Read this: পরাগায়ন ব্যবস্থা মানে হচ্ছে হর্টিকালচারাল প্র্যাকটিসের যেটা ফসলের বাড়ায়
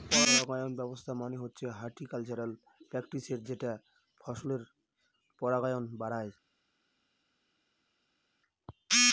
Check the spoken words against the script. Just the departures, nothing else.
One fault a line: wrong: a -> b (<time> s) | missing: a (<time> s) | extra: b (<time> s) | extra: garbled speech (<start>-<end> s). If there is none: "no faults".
extra: পরাগায়ন (5.4 s)